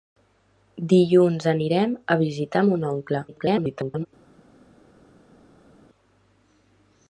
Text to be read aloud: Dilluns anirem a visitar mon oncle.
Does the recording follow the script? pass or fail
fail